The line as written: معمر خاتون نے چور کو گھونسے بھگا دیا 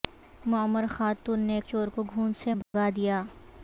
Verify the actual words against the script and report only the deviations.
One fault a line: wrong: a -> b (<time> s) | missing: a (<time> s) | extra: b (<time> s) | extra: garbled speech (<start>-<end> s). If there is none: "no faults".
no faults